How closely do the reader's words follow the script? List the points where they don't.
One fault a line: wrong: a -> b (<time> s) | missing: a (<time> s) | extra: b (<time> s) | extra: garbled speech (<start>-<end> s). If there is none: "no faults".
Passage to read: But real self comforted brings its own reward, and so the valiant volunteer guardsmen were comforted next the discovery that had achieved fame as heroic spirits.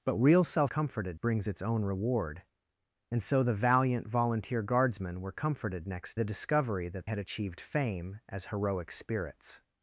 no faults